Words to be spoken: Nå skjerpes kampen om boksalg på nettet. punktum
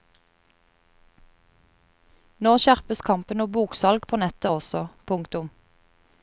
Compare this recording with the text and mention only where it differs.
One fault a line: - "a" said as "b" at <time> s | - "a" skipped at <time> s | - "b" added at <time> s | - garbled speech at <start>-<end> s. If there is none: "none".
- "også" added at 4.5 s